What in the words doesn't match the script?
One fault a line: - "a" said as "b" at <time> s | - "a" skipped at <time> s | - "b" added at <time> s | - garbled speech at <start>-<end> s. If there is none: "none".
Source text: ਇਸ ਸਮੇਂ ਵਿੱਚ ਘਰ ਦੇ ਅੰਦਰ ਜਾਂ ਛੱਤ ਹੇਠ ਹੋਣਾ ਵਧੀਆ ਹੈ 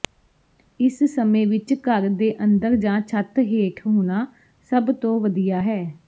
- "ਸਭ ਤੋਂ" added at 4.7 s